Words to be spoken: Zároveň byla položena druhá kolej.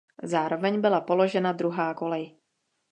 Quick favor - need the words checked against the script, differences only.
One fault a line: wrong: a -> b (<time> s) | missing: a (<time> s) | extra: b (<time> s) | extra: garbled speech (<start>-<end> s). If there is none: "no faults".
no faults